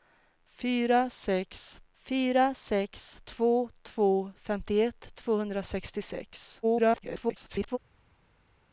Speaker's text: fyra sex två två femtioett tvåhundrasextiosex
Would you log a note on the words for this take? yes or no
yes